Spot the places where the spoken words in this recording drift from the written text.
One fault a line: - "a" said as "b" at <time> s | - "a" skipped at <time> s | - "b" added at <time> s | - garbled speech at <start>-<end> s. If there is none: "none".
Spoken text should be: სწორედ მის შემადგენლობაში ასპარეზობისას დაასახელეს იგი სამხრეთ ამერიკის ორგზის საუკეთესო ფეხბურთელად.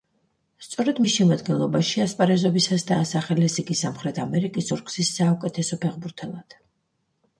none